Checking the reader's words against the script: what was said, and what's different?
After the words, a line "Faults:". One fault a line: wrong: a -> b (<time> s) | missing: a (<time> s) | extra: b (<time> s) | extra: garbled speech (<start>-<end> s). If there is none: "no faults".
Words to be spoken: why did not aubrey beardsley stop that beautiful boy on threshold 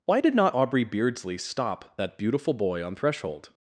why did not aubrey beardsley stop that beautiful boy on threshold
Faults:
no faults